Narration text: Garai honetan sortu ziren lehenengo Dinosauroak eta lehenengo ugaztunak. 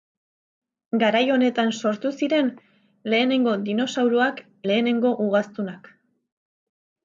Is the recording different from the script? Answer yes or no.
yes